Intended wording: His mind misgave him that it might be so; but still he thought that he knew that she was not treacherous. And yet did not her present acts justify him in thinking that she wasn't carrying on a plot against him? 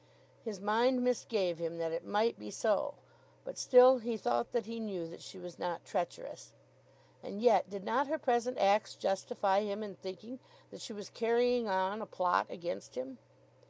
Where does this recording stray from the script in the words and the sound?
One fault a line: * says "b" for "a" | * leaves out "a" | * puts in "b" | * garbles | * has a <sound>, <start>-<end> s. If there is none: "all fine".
* says "was" for "wasn't"